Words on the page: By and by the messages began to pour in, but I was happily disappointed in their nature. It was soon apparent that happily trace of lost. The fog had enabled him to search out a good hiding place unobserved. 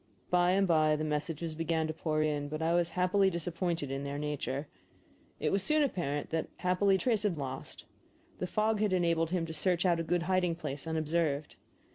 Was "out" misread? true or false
false